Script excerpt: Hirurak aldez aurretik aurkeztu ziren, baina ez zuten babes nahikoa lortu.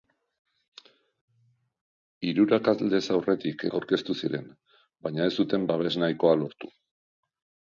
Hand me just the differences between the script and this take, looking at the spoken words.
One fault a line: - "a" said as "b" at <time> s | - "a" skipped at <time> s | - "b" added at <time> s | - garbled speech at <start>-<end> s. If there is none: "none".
none